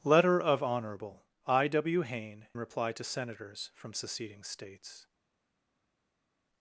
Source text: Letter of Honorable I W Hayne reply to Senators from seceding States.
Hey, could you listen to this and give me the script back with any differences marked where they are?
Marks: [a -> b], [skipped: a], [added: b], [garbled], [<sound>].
Letter of Honorable I W Hayne reply to Senators from seceding States.